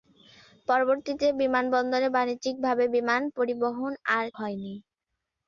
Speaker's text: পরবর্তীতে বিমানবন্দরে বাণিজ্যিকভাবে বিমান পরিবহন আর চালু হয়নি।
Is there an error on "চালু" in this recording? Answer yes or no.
yes